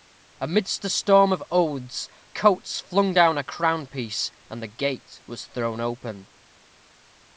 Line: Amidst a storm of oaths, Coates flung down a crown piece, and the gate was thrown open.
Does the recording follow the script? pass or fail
pass